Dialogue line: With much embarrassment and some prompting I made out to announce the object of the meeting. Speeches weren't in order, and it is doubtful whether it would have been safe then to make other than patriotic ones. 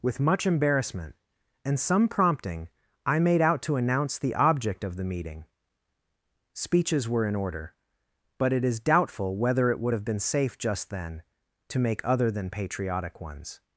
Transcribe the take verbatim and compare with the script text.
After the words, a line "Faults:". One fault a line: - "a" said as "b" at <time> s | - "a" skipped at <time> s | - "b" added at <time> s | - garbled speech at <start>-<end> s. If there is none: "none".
With much embarrassment and some prompting I made out to announce the object of the meeting. Speeches were in order, but it is doubtful whether it would have been safe just then to make other than patriotic ones.
Faults:
- "weren't" said as "were" at 7.1 s
- "and" said as "but" at 8.4 s
- "just" added at 10.6 s